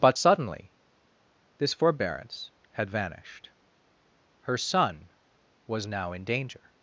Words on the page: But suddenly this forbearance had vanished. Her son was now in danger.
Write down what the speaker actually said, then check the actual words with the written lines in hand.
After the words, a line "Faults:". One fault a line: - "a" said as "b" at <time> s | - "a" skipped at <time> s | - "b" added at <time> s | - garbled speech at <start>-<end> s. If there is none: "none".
But suddenly this forbearance had vanished. Her son was now in danger.
Faults:
none